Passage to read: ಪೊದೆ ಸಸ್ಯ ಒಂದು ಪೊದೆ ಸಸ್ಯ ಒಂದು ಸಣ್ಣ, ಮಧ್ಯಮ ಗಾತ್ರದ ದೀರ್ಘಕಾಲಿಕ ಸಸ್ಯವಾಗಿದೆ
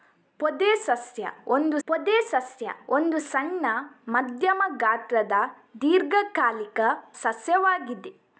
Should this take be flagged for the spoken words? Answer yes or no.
no